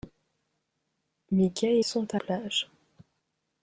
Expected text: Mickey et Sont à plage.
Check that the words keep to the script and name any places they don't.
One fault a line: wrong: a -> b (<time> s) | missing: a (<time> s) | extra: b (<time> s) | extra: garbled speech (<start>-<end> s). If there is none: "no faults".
no faults